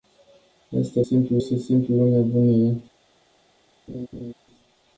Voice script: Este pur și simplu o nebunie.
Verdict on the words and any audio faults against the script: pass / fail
fail